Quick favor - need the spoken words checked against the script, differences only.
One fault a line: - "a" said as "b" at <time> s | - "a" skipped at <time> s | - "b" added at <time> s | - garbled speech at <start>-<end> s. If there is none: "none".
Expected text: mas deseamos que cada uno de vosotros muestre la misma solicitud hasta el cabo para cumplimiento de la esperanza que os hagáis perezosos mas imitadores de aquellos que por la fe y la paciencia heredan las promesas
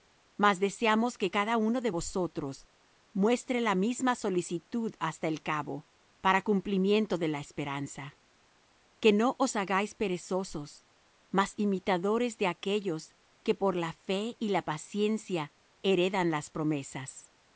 - "no" added at 9.1 s